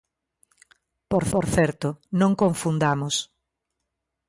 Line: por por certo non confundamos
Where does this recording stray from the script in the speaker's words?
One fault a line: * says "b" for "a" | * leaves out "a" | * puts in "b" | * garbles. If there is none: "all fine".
all fine